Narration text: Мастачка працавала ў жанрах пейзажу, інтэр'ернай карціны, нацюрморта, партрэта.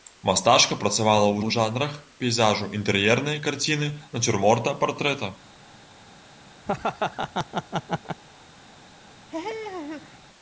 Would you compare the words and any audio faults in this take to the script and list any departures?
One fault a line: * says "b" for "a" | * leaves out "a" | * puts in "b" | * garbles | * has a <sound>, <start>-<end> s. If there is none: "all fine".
* puts in "ў"
* has a laugh, 6.6-8.2 s
* has a laugh, 9.3-10.2 s